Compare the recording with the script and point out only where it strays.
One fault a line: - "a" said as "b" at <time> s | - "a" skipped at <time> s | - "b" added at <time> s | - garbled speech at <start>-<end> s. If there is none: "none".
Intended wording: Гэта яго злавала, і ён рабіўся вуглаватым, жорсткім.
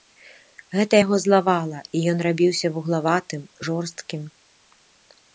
none